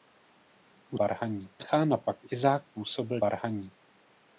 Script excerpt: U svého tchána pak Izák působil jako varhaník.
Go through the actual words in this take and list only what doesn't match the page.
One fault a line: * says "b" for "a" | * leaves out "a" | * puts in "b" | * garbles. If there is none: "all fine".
* says "varhaník" for "svého"
* leaves out "jako"